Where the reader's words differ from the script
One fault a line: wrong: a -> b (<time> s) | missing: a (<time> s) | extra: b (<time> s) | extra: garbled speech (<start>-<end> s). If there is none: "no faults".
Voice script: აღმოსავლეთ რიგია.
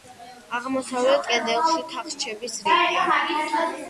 extra: კედელში თახჩების (1.3 s)